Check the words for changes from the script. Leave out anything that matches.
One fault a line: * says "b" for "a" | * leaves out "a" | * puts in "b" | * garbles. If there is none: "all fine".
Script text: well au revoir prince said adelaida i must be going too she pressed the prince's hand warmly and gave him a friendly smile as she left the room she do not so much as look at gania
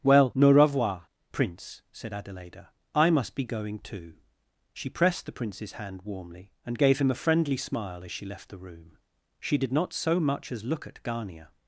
* says "did" for "do"